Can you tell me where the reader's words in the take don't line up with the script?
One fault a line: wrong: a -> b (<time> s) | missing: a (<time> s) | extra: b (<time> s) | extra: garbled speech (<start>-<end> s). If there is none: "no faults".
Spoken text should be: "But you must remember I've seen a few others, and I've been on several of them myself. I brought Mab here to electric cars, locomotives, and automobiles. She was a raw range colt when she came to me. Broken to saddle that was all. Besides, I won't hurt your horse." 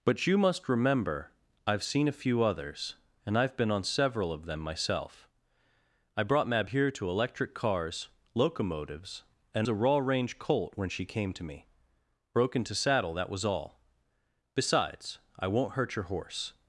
missing: automobiles She was (9.7 s)